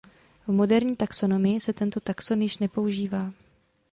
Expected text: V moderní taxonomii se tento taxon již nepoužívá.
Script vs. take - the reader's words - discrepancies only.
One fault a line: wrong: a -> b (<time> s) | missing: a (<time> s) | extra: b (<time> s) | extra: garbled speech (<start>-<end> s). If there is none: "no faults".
no faults